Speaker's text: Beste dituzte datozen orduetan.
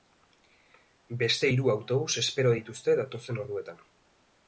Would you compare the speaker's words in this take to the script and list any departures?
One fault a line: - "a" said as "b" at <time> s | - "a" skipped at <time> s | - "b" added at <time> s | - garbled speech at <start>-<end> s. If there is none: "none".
- "hiru autobus espero" added at 1.5 s